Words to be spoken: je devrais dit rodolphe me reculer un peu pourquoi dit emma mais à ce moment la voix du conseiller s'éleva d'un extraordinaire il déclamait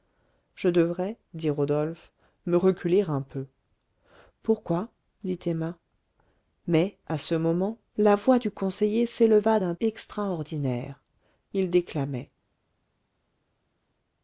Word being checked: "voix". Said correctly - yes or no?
yes